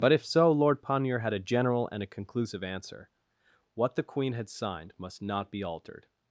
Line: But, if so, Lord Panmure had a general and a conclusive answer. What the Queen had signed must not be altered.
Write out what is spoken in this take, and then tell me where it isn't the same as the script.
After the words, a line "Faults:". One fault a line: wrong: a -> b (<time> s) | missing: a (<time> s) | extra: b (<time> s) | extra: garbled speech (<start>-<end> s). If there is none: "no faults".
But, if so, Lord Panmure had a general and a conclusive answer. What the Queen had signed must not be altered.
Faults:
no faults